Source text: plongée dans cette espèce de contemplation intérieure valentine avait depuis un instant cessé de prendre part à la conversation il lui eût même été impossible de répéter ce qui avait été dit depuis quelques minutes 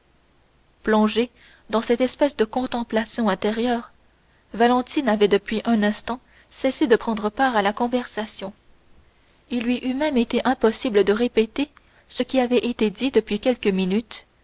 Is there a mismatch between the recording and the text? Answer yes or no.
no